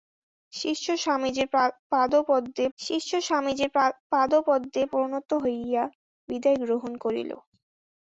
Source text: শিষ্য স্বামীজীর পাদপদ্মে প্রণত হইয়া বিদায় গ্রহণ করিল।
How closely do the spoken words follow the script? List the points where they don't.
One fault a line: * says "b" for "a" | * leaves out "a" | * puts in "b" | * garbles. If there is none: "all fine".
* puts in "শিষ্য স্বামীজীর পাদপদ্মে"